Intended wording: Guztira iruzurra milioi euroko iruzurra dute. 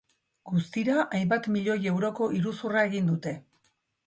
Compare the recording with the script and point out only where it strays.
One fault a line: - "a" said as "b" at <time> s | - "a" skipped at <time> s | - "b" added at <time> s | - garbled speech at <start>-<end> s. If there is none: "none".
- "iruzurra" said as "hainbat" at 1.2 s
- "egin" added at 2.9 s